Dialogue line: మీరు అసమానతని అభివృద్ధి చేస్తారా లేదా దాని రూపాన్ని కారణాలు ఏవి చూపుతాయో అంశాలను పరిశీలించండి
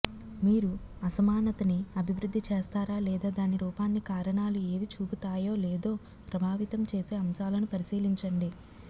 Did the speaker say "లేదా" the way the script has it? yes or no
yes